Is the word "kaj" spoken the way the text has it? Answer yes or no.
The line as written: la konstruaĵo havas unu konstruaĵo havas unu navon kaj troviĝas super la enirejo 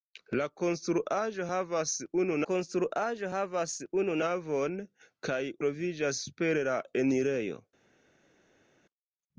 yes